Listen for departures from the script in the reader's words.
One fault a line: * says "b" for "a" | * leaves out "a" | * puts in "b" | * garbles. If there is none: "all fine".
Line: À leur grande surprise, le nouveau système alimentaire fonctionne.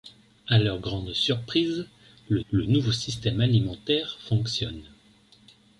* puts in "le"